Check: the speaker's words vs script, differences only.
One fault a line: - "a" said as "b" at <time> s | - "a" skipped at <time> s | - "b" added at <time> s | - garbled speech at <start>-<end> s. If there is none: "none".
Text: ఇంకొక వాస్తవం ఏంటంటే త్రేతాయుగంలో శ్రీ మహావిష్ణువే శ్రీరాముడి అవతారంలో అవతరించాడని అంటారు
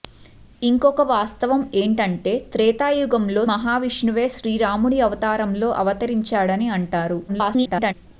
- "శ్రీ" skipped at 3.4 s
- garbled speech at 7.3-7.9 s